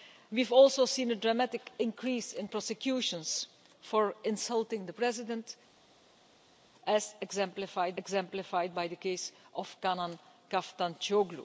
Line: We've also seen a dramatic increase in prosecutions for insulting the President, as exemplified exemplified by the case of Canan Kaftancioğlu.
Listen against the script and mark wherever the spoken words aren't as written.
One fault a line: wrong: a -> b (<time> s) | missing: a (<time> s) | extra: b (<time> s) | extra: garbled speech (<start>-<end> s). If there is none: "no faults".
no faults